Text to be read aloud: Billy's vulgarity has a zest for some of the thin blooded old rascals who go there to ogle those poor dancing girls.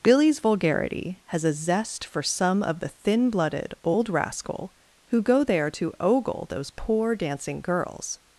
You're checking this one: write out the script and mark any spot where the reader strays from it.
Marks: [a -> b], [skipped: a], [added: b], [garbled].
Billy's vulgarity has a zest for some of the thin blooded old [rascals -> rascal] who go there to ogle those poor dancing girls.